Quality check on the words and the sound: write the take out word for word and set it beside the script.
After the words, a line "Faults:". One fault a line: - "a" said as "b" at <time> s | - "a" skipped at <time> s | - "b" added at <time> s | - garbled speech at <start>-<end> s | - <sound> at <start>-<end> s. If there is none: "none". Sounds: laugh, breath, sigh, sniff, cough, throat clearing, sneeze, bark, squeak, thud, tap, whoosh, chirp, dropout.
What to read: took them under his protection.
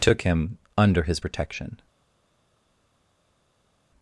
took him under his protection.
Faults:
- "them" said as "him" at 0.2 s